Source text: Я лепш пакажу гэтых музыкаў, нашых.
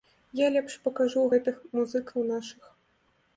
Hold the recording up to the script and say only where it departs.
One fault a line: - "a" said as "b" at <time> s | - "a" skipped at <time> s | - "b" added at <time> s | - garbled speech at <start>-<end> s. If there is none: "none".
none